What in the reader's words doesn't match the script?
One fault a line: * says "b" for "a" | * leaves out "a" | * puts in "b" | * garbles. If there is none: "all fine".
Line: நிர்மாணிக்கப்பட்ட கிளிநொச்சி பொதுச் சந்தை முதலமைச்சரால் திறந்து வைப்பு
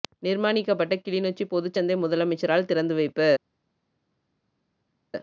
all fine